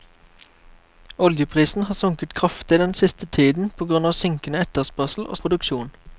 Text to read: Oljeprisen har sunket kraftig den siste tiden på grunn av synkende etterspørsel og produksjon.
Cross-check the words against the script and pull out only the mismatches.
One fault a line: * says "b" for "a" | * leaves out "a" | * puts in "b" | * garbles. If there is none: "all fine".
all fine